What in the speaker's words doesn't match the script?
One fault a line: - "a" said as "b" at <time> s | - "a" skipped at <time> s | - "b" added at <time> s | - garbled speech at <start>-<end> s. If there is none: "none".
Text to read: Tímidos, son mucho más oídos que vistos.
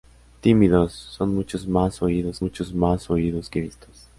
- "mucho más oídos" added at 2.4 s